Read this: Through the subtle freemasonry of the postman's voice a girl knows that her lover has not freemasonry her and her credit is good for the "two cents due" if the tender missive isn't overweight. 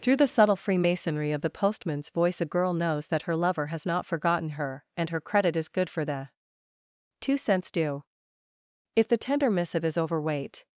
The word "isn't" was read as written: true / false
false